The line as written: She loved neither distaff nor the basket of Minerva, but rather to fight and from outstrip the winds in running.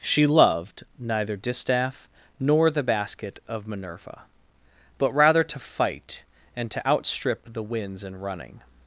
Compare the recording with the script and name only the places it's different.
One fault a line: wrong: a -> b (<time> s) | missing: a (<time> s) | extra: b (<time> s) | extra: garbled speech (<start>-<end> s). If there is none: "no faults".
wrong: from -> to (6.7 s)